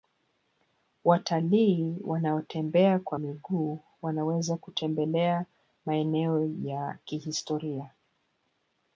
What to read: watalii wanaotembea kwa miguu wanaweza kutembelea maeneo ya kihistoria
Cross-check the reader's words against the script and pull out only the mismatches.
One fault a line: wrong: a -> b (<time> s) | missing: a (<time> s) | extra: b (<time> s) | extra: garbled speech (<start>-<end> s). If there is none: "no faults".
no faults